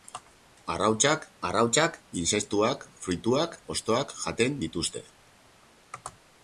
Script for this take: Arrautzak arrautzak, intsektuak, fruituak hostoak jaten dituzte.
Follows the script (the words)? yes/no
yes